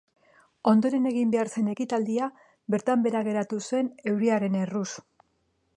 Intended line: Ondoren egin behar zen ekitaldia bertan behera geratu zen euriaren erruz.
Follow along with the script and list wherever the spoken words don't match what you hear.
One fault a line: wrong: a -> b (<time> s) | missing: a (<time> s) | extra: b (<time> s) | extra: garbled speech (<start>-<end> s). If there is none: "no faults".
no faults